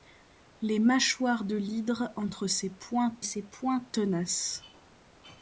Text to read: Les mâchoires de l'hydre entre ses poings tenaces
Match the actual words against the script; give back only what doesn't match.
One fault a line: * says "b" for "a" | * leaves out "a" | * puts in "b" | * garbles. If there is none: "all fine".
* puts in "ses poings"